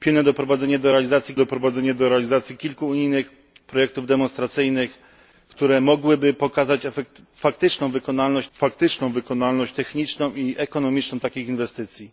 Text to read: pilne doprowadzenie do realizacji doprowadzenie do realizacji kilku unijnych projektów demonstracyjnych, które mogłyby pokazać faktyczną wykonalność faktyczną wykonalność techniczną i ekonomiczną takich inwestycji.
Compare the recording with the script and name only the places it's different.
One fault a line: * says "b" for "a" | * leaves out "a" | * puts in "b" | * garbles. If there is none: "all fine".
all fine